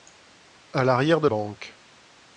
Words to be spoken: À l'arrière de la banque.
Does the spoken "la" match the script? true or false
false